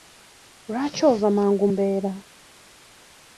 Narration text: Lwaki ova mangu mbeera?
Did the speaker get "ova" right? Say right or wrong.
right